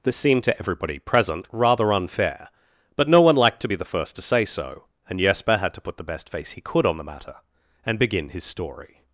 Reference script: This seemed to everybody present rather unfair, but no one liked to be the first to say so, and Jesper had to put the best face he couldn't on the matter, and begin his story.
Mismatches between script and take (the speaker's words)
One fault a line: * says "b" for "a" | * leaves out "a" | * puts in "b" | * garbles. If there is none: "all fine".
* says "could" for "couldn't"